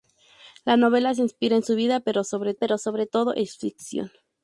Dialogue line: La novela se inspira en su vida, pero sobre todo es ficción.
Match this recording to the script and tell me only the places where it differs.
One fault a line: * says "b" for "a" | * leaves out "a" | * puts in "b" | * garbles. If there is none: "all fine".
* puts in "pero sobre"